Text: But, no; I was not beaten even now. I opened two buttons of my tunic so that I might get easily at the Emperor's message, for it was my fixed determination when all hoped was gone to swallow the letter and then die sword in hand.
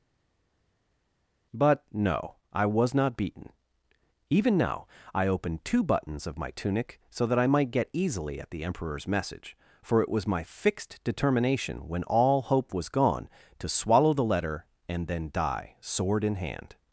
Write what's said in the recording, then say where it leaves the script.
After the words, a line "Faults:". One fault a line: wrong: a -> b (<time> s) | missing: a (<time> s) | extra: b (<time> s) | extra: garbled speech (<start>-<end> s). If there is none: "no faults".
But, no; I was not beaten even now. I opened two buttons of my tunic so that I might get easily at the Emperor's message, for it was my fixed determination when all hope was gone to swallow the letter and then die sword in hand.
Faults:
wrong: hoped -> hope (12.4 s)